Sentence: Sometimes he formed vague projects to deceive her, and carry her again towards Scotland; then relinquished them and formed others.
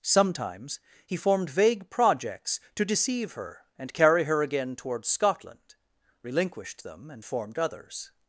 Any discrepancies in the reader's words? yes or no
yes